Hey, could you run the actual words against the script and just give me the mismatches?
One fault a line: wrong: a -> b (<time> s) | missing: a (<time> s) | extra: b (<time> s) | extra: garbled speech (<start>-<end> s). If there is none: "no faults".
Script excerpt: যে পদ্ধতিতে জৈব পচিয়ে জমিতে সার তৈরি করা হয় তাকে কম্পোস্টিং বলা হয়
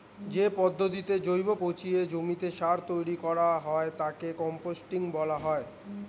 no faults